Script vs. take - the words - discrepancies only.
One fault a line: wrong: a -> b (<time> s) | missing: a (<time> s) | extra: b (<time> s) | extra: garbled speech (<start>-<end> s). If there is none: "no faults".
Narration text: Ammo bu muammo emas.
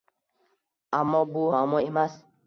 no faults